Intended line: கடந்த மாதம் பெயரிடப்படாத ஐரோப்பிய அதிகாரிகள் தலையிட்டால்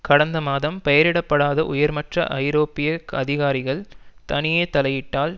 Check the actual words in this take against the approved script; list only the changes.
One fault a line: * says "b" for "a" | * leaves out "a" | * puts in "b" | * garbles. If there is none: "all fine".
* puts in "உயர்மட்ட"
* puts in "தனியே"